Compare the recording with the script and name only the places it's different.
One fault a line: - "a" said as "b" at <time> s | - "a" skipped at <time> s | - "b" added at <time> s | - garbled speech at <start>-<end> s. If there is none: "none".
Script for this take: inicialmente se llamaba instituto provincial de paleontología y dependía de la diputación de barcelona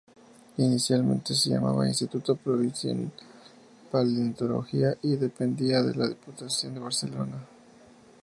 none